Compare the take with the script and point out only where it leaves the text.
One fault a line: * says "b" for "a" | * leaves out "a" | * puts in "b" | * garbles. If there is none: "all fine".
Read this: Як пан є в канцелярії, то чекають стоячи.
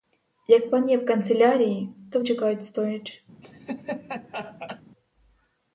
all fine